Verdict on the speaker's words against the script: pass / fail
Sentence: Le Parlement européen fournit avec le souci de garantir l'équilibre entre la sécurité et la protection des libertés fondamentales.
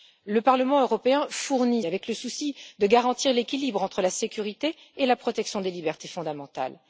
pass